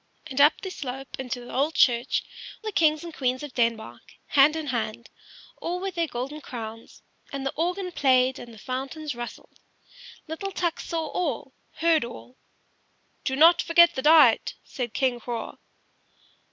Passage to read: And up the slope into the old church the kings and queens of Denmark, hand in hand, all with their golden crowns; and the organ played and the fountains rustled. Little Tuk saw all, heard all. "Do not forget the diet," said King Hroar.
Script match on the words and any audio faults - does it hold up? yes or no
yes